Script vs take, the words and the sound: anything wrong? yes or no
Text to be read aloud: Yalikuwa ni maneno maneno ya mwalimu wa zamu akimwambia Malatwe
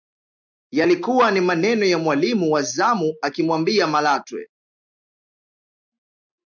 yes